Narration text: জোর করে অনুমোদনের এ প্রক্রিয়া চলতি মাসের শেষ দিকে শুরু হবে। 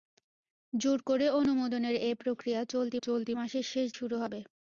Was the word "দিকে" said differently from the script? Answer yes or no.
yes